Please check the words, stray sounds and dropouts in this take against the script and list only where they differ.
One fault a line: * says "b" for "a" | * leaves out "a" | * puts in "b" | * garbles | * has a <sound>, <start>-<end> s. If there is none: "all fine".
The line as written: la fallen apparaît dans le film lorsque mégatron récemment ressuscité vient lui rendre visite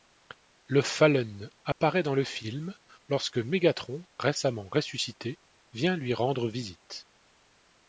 * says "le" for "la"
* has a dropout, 1.7-1.8 s